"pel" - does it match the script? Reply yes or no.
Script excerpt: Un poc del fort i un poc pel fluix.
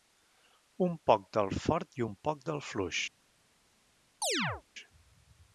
no